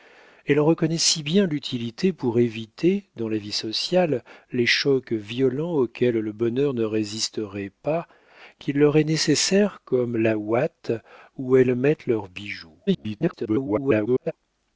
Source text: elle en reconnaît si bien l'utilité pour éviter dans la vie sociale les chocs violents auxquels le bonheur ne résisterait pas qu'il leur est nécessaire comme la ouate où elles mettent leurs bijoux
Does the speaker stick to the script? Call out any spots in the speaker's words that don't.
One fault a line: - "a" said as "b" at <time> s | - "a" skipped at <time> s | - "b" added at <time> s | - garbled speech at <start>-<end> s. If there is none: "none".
- garbled speech at 12.9-14.3 s